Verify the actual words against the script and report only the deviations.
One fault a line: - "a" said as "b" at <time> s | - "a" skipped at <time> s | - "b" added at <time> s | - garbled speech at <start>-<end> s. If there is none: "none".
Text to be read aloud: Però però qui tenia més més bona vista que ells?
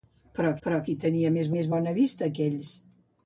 none